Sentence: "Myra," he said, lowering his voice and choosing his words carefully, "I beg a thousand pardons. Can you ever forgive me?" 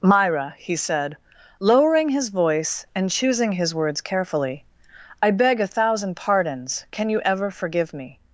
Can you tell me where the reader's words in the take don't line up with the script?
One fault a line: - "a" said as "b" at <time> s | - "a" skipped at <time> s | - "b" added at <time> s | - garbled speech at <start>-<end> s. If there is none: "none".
none